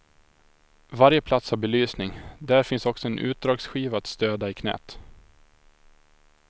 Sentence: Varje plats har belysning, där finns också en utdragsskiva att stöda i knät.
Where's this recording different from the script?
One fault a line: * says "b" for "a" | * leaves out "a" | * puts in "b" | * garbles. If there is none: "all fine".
all fine